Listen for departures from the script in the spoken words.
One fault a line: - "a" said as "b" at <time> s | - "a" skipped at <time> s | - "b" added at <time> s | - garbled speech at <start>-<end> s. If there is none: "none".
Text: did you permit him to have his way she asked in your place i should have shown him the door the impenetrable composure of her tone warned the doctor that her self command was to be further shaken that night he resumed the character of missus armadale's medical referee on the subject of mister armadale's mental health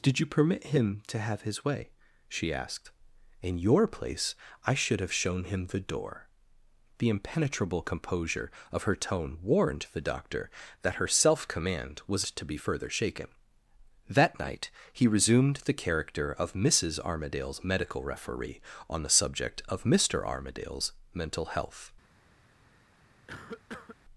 none